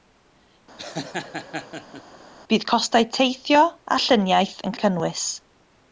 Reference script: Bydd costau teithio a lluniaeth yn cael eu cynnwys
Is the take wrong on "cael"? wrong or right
wrong